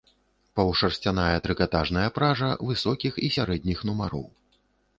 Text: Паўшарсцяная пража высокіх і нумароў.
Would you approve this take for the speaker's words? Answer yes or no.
no